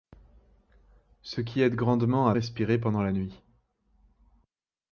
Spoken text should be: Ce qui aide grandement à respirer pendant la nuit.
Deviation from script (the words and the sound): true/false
false